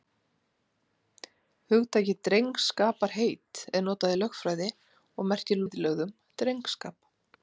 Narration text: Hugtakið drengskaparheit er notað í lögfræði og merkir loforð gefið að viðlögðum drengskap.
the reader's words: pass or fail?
fail